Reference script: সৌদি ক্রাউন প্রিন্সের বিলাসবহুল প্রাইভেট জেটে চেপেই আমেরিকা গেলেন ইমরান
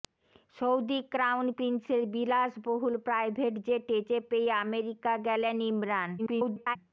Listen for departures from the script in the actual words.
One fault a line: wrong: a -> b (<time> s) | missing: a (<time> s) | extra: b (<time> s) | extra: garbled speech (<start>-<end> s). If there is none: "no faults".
extra: garbled speech (6.2-6.8 s)